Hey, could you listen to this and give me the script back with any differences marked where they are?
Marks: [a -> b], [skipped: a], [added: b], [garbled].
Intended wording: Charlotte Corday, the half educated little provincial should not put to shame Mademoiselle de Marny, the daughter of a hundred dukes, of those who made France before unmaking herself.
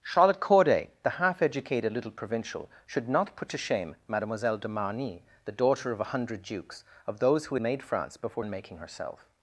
Charlotte Corday, the half educated little provincial should not put to shame Mademoiselle de Marny, the daughter of a hundred dukes, of those who made France before unmaking herself.